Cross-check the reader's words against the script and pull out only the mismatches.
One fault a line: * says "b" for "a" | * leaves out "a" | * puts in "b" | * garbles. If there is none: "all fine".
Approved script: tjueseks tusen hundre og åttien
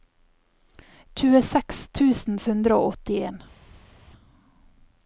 all fine